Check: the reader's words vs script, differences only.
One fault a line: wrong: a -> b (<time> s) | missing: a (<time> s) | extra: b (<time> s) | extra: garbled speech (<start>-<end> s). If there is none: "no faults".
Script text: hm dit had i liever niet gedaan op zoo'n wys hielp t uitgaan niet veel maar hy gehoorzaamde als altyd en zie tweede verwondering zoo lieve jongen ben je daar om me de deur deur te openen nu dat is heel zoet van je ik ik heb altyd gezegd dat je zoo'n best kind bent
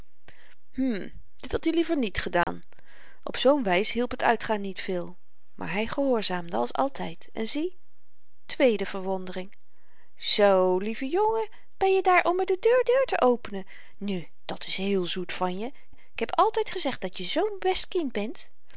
no faults